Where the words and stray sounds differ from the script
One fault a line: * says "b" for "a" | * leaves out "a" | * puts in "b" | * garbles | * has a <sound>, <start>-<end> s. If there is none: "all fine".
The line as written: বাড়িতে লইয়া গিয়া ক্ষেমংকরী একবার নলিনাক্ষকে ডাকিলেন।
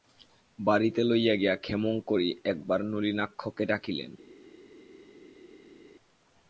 all fine